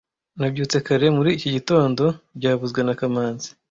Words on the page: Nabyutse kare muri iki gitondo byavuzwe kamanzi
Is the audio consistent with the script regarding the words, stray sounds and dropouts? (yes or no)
no